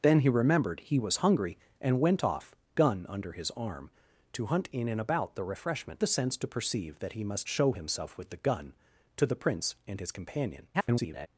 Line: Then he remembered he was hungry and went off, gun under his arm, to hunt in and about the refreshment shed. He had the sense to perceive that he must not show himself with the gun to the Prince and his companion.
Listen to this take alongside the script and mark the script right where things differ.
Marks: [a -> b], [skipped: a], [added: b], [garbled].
Then he remembered he was hungry and went off, gun under his arm, to hunt in and about the refreshment [skipped: shed. He had] the sense to perceive that he must [skipped: not] show himself with the gun to the Prince and his companion. [garbled]